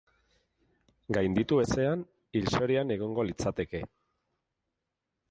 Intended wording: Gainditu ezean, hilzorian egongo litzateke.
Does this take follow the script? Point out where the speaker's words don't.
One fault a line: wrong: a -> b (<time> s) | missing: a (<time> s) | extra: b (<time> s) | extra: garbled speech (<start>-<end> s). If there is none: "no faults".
no faults